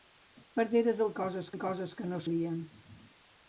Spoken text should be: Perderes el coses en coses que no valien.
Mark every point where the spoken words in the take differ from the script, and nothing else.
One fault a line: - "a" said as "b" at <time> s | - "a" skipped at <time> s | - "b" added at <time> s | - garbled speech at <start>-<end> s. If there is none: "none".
none